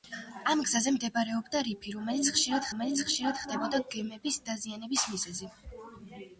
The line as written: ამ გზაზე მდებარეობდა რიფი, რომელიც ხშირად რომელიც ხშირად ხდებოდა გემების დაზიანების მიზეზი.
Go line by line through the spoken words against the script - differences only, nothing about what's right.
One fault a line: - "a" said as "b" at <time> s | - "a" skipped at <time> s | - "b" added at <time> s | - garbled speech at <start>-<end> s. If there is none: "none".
none